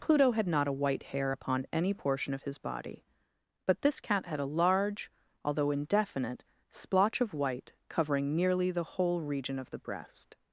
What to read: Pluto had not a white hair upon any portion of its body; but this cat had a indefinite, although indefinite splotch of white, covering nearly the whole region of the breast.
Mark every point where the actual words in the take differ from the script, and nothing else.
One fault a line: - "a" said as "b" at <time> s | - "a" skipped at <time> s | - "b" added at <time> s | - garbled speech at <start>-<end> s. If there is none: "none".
- "its" said as "his" at 2.4 s
- "indefinite" said as "large" at 4.4 s